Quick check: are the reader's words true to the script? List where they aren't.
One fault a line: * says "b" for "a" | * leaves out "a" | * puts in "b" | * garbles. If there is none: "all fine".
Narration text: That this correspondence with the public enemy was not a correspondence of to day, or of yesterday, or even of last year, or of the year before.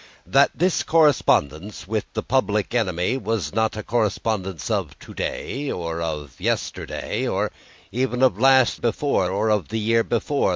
* says "before" for "year"